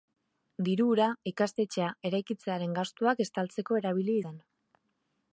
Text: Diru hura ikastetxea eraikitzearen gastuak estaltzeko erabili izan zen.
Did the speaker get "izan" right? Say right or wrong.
wrong